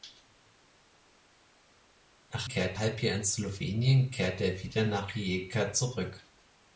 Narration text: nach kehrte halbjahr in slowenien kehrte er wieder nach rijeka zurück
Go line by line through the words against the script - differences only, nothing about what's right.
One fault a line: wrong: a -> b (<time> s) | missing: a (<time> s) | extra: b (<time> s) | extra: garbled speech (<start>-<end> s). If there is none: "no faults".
no faults